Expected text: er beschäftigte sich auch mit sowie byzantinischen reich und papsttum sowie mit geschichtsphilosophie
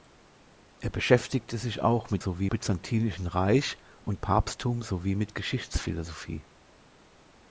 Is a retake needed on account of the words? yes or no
no